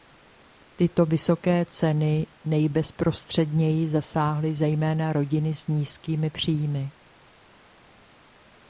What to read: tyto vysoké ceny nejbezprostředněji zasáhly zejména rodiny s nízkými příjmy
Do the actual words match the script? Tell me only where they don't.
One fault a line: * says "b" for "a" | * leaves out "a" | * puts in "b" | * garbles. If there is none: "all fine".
all fine